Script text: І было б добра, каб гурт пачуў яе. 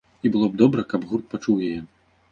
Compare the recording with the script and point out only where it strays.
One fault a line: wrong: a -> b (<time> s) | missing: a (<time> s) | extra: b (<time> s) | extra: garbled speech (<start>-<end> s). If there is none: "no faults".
no faults